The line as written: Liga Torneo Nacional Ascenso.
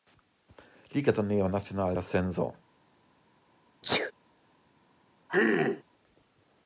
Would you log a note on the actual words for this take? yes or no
no